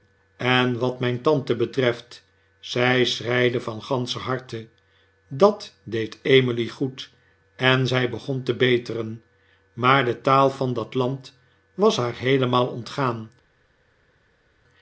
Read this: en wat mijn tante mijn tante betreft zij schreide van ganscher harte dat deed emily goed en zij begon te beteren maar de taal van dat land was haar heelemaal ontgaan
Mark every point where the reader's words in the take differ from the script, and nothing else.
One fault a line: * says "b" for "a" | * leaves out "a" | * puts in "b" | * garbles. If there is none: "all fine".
* leaves out "mijn tante"